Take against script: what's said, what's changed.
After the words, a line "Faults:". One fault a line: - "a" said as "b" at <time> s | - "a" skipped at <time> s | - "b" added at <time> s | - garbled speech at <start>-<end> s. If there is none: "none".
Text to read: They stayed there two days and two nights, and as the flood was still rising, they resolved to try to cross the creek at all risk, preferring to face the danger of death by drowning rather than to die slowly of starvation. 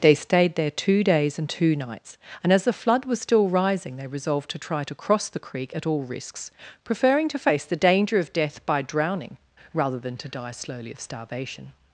They stayed there two days and two nights, and as the flood was still rising, they resolved to try to cross the creek at all risks, preferring to face the danger of death by drowning rather than to die slowly of starvation.
Faults:
- "risk" said as "risks" at 6.0 s